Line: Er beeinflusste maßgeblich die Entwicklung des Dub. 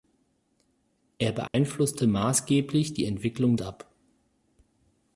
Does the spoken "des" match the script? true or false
false